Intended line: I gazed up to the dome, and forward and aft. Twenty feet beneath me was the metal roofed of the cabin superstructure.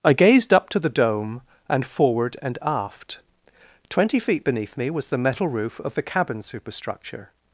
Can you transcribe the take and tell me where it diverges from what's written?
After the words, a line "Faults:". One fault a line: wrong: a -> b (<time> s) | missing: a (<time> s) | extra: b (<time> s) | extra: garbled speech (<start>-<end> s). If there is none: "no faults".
I gazed up to the dome, and forward and aft. Twenty feet beneath me was the metal roof of the cabin superstructure.
Faults:
wrong: roofed -> roof (5.5 s)